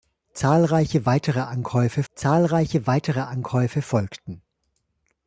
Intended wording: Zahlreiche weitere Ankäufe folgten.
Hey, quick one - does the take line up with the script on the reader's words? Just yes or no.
no